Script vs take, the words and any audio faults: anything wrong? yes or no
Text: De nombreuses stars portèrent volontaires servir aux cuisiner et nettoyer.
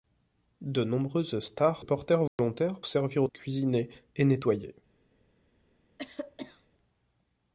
yes